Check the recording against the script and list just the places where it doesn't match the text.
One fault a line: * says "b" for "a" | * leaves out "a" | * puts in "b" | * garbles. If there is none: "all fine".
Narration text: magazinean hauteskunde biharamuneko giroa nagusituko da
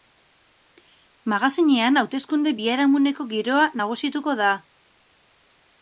all fine